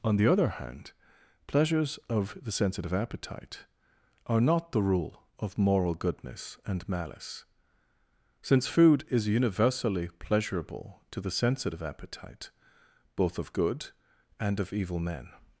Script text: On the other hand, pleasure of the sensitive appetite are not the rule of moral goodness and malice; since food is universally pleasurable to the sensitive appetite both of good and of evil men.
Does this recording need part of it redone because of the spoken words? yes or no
yes